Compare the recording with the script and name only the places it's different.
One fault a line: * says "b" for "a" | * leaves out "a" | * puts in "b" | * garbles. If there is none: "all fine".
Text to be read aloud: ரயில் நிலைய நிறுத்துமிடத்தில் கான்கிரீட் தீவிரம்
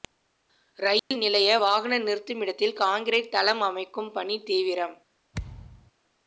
* puts in "வாகன"
* puts in "தளம் அமைக்கும் பணி"